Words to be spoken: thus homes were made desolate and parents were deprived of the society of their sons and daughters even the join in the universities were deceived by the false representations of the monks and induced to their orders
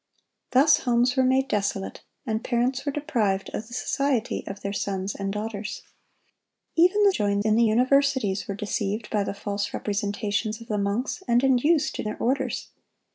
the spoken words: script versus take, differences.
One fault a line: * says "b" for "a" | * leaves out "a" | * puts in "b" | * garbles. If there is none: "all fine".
all fine